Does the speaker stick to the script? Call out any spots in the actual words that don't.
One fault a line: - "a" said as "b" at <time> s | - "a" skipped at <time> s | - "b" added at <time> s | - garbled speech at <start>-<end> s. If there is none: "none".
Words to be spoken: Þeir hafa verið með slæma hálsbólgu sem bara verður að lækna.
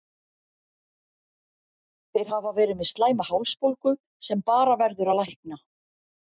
none